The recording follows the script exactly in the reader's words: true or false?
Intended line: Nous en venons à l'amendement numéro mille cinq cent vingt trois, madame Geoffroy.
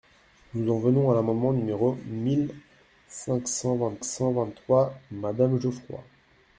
false